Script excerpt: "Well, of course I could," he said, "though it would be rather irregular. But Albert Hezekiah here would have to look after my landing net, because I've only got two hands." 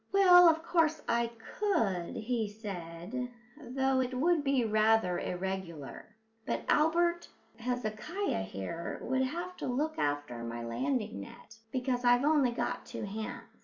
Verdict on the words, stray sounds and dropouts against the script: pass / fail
pass